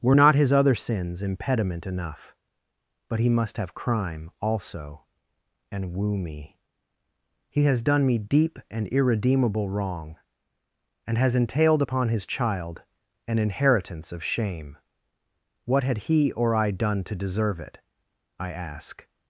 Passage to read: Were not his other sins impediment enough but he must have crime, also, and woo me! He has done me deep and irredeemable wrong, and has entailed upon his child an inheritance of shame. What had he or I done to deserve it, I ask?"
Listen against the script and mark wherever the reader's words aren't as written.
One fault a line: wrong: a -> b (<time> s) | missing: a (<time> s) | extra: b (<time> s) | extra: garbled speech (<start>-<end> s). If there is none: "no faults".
no faults